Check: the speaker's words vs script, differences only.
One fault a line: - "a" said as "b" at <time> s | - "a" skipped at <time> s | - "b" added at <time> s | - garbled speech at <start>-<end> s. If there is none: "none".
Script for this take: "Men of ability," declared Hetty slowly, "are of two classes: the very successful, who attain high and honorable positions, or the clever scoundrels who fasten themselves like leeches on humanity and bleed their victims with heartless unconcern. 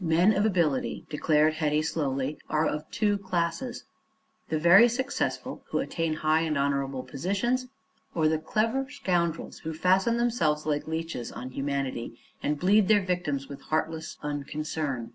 none